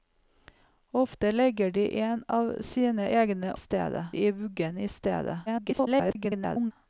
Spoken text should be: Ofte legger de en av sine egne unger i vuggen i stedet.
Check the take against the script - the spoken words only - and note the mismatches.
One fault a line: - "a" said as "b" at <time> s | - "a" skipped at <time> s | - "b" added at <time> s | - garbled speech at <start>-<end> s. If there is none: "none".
- "unger" said as "stedet" at 3.6 s
- garbled speech at 5.5-6.7 s